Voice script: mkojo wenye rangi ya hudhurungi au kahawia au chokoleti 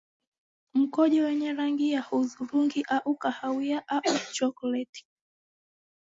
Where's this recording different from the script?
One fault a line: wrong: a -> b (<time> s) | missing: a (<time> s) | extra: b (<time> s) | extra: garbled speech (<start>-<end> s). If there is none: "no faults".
no faults